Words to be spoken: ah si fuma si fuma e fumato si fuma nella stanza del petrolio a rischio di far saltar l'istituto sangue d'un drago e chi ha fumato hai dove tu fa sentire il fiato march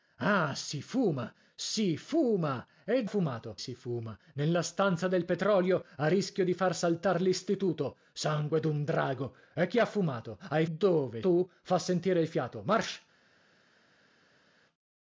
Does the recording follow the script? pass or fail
pass